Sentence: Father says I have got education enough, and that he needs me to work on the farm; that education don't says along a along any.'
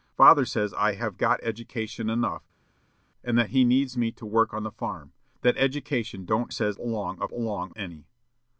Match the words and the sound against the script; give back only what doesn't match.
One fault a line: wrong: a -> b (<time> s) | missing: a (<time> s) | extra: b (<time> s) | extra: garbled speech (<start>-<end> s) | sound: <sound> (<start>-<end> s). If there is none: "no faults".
no faults